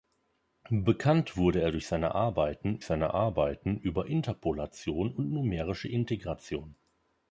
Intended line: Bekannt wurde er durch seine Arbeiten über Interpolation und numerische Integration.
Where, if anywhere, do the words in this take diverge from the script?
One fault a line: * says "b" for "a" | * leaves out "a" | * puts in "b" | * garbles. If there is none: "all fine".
* puts in "seine Arbeiten"